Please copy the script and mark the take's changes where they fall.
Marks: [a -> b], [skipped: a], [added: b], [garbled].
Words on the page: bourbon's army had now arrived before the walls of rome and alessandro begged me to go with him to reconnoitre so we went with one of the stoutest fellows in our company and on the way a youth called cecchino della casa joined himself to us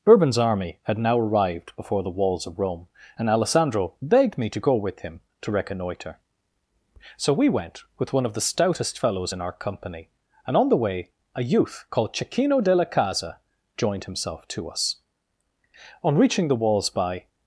bourbon's army had now arrived before the walls of rome and alessandro begged me to go with him to reconnoitre so we went with one of the stoutest fellows in our company and on the way a youth called cecchino della casa joined himself to us [added: on reaching the walls by]